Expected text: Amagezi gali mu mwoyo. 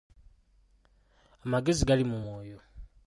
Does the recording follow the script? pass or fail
pass